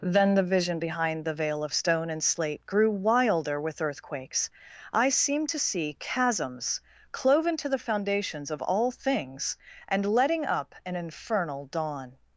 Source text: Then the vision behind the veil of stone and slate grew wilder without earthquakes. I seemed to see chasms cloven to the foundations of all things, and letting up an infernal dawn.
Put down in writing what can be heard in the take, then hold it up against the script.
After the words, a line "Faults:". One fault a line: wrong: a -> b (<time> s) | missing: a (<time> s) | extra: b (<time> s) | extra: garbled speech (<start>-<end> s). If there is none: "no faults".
Then the vision behind the veil of stone and slate grew wilder with earthquakes. I seemed to see chasms cloven to the foundations of all things, and letting up an infernal dawn.
Faults:
wrong: without -> with (3.6 s)